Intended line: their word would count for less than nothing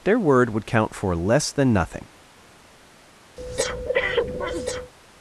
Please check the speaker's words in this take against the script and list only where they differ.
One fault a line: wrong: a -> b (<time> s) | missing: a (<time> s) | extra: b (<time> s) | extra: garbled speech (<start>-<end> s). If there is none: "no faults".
no faults